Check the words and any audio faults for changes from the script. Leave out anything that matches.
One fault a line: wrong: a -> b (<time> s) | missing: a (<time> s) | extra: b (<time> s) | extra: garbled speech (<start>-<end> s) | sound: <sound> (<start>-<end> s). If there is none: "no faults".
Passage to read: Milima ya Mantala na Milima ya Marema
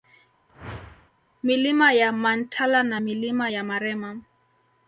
sound: whoosh (0.5-1.1 s)